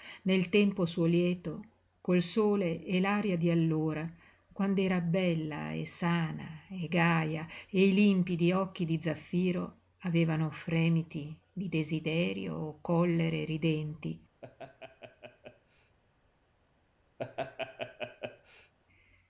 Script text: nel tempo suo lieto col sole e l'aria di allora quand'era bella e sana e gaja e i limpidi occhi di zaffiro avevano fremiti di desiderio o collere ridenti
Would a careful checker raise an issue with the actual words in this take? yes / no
no